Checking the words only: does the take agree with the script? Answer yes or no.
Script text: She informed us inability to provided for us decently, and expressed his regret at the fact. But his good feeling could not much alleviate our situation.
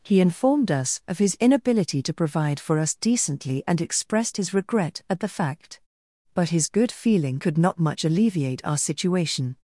no